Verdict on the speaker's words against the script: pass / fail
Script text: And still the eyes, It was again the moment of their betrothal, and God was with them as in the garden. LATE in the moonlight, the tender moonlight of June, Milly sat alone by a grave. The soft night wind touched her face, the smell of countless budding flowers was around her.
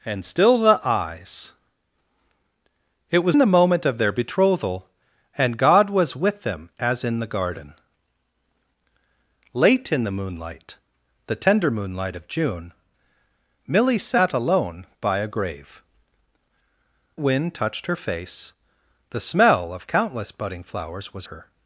fail